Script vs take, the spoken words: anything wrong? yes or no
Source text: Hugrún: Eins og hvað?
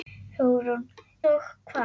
yes